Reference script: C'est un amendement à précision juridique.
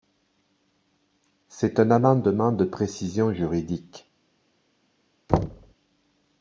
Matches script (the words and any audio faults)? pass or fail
fail